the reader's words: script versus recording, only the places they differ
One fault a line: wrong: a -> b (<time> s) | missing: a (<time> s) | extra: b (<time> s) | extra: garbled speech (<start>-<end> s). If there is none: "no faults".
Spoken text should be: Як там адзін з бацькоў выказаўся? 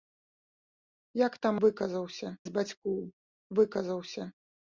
wrong: адзін -> выказаўся (1.7 s)